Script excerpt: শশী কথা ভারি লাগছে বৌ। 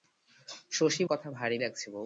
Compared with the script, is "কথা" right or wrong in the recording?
right